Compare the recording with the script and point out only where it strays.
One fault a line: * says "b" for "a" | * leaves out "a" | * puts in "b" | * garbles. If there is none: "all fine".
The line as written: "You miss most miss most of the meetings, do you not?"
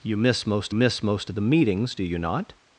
all fine